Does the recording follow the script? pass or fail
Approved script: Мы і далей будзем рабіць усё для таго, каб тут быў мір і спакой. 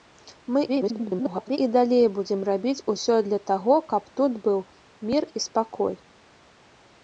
fail